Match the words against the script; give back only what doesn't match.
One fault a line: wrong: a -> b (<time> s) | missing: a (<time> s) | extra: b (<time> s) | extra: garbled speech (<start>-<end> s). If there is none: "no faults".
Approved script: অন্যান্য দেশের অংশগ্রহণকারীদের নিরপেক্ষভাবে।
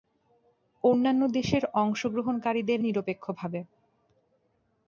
no faults